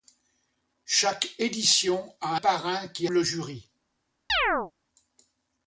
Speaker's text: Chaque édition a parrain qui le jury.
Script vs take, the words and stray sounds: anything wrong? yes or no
yes